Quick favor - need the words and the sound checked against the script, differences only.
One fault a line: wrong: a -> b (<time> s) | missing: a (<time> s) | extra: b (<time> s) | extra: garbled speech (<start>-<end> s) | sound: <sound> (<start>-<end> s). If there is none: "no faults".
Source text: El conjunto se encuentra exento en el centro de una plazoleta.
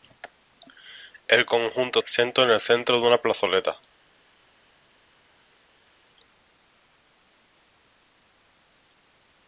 missing: se encuentra (2.0 s)